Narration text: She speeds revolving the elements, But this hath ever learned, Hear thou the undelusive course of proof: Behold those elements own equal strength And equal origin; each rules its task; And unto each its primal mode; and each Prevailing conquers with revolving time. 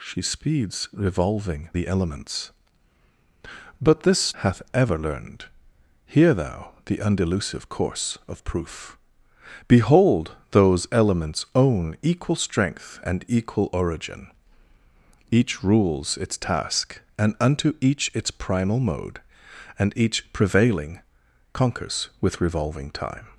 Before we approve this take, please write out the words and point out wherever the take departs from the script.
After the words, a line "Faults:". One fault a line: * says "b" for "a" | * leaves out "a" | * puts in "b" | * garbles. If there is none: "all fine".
She speeds revolving the elements, But this hath ever learned, Hear thou the undelusive course of proof: Behold those elements own equal strength And equal origin; each rules its task; And unto each its primal mode; and each Prevailing conquers with revolving time.
Faults:
all fine